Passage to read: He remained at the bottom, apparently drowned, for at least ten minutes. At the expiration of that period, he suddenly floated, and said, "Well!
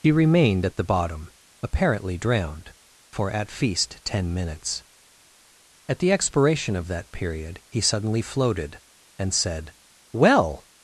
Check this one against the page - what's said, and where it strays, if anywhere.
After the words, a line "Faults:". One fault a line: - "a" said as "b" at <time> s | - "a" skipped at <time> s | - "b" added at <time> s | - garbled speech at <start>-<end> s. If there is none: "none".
He remained at the bottom, apparently drowned, for at feast ten minutes. At the expiration of that period, he suddenly floated, and said, "Well!
Faults:
- "least" said as "feast" at 3.5 s